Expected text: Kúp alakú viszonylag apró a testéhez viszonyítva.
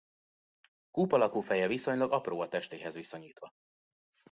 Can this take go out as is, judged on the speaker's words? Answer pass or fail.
fail